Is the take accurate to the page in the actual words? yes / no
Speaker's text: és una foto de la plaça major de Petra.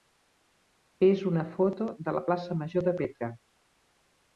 yes